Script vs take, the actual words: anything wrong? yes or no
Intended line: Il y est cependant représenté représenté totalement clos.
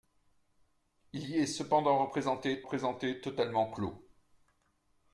no